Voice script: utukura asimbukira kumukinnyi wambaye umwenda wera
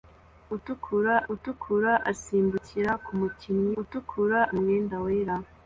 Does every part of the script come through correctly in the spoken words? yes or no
no